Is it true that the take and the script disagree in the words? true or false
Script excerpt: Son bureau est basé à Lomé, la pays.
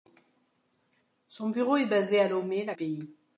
false